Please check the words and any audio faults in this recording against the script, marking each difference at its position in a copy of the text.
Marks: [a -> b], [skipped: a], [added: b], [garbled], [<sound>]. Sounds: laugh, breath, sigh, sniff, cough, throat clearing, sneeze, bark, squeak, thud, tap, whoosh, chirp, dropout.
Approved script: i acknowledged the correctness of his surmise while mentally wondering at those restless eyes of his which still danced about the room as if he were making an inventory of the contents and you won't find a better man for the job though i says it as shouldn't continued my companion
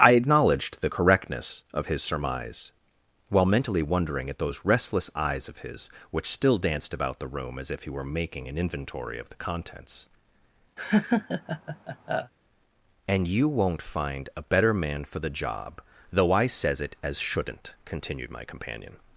i acknowledged the correctness of his surmise while mentally wondering at those restless eyes of his which still danced about the room as if he were making an inventory of the contents [laugh] and you won't find a better man for the job though i says it as shouldn't continued my companion